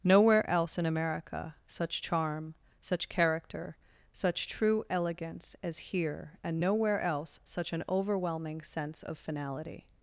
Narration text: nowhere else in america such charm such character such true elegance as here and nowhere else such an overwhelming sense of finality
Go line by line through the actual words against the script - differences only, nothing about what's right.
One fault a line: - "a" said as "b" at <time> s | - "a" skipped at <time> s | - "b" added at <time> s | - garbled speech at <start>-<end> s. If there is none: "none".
none